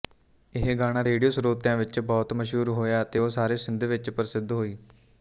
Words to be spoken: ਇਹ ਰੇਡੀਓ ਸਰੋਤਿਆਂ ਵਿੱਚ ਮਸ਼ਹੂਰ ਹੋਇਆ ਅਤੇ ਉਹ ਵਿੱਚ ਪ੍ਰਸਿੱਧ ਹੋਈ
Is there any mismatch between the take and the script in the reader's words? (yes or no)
yes